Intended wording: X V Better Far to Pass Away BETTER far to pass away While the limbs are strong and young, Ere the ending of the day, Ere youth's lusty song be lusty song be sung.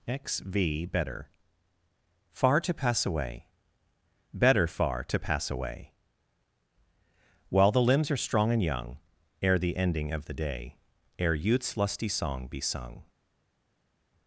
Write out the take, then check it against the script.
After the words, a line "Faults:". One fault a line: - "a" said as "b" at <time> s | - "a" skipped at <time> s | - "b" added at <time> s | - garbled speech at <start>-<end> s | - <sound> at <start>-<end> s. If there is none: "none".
X V Better Far to Pass Away BETTER far to pass away While the limbs are strong and young, Ere the ending of the day, Ere youth's lusty song be sung.
Faults:
- "lusty song be" skipped at 12.6 s